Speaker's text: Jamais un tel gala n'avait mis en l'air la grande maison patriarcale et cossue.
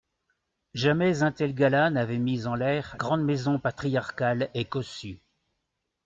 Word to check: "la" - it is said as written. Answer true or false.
false